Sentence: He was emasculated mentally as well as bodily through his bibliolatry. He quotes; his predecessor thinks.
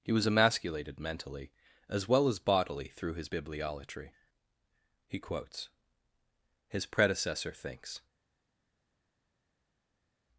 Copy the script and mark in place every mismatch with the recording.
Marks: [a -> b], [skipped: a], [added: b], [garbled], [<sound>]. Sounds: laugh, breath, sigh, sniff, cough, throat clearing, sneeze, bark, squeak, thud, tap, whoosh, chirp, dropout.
He was emasculated mentally as well as bodily through his bibliolatry. He quotes; his predecessor thinks.